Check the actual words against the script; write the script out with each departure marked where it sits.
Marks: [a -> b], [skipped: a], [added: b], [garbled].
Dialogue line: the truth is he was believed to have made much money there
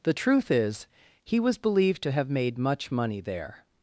the truth is he was believed to have made much money there